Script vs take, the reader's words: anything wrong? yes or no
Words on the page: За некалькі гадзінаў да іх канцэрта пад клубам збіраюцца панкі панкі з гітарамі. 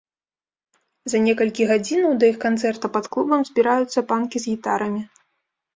yes